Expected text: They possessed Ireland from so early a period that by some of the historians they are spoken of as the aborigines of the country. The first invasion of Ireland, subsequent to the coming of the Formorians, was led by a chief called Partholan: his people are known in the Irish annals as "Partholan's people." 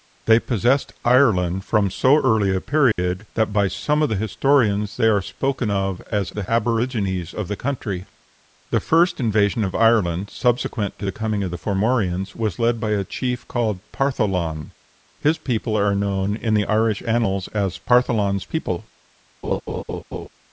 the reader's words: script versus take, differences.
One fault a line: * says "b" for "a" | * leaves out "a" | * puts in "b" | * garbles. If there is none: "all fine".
all fine